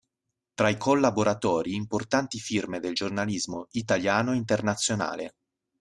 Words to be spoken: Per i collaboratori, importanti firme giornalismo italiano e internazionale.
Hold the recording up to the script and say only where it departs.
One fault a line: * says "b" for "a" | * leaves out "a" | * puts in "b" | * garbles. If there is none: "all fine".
* says "Tra" for "Per"
* puts in "del"